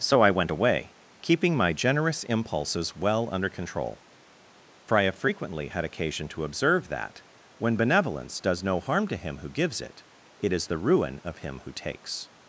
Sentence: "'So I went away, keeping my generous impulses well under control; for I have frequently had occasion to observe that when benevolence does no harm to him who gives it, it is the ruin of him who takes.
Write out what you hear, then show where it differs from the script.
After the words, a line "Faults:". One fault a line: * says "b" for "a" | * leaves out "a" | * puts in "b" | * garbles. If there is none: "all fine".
"'So I went away, keeping my generous impulses well under control; for I have frequently had occasion to observe that when benevolence does no harm to him who gives it, it is the ruin of him who takes.
Faults:
all fine